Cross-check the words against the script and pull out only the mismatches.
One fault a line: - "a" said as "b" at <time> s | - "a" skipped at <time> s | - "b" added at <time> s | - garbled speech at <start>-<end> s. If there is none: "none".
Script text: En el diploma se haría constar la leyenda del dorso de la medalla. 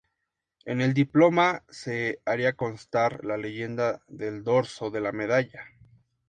none